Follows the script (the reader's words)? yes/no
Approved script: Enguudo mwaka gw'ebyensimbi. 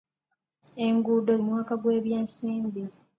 yes